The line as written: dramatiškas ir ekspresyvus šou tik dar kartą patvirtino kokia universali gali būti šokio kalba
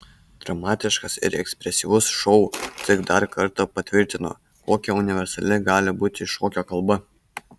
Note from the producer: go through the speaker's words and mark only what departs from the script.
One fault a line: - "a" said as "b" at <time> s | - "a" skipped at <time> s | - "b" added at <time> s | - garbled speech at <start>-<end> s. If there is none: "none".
none